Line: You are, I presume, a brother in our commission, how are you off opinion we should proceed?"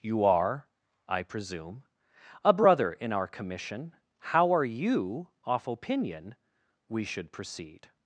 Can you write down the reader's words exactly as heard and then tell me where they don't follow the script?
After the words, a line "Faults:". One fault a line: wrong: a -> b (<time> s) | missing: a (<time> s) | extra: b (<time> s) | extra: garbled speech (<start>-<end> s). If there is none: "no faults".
You are, I presume, a brother in our commission, how are you off opinion we should proceed?"
Faults:
no faults